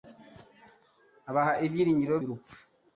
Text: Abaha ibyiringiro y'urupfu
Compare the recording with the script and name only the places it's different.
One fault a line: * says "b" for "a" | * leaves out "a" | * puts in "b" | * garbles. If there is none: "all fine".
all fine